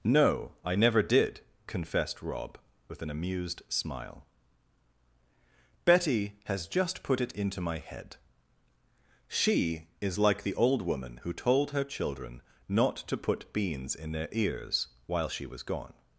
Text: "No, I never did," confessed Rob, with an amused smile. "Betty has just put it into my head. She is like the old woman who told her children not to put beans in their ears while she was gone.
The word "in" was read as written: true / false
true